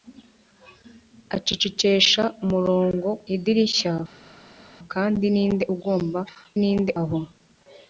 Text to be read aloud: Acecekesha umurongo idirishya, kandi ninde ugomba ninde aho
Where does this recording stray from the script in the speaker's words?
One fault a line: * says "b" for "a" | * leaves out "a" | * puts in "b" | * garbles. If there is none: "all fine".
all fine